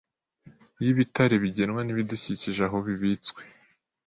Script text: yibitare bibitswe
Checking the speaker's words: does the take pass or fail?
fail